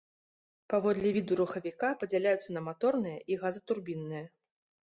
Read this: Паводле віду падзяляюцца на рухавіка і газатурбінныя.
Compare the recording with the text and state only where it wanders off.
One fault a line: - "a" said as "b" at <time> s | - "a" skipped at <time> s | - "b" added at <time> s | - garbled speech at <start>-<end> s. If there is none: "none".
- "рухавіка" added at 1.4 s
- "рухавіка" said as "маторныя" at 2.7 s